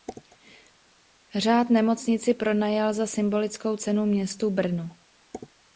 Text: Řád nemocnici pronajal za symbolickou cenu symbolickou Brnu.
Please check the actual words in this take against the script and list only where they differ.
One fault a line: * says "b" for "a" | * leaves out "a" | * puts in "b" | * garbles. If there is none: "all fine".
* says "městu" for "symbolickou"